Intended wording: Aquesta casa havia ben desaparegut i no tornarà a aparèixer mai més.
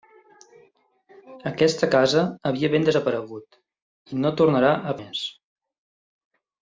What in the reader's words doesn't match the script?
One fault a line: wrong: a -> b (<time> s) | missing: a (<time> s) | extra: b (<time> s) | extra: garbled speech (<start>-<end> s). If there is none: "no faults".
missing: aparèixer mai (5.0 s)